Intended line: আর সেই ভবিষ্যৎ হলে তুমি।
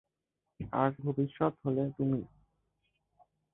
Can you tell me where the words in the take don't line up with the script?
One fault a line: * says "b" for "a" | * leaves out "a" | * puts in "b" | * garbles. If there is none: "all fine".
* leaves out "সেই"